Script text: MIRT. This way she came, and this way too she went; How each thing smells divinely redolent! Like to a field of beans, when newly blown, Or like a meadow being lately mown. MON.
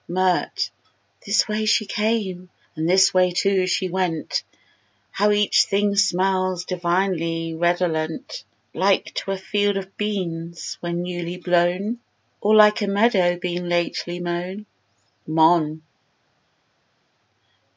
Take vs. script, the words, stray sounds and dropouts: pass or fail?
pass